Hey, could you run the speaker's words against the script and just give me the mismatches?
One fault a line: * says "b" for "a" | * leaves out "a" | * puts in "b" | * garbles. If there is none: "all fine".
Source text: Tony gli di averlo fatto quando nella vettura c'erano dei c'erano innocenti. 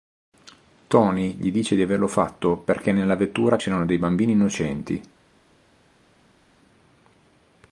* puts in "dice"
* says "perché" for "quando"
* says "bambini" for "c'erano"